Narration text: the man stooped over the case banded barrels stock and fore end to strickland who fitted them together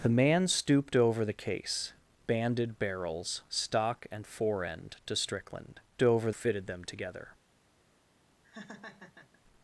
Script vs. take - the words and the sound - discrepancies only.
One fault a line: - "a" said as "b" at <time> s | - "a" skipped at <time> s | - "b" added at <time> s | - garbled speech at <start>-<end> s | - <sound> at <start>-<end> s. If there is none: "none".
- "who" said as "over" at 6.0 s
- laugh at 8.4-9.4 s